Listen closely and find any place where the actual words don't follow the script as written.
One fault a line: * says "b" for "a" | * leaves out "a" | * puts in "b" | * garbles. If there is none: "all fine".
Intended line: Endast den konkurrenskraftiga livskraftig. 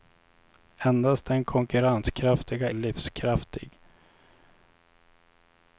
all fine